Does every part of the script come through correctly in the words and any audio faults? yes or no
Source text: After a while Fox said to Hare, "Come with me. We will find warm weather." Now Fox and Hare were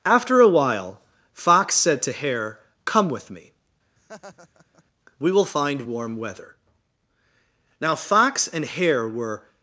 no